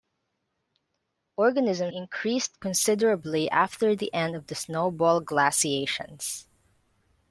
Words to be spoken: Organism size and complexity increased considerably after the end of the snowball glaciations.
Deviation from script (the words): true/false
true